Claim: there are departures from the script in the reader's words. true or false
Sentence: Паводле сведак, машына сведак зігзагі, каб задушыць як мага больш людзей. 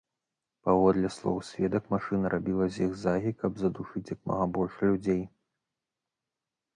true